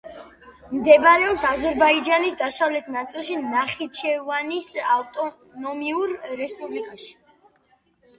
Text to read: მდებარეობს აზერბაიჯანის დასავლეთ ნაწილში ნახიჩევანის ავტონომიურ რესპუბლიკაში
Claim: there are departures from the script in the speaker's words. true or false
false